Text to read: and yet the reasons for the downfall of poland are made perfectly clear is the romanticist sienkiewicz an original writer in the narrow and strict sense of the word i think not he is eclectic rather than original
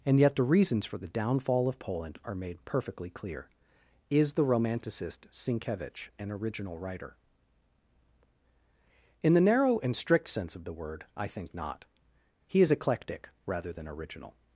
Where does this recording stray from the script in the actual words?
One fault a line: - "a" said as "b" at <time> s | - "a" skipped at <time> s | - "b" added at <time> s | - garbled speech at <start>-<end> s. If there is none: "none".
none